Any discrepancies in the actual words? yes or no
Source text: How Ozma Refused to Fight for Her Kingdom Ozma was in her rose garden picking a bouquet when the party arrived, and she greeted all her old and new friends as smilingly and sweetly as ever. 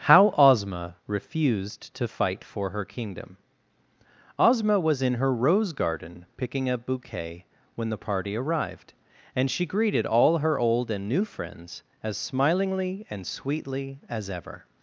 no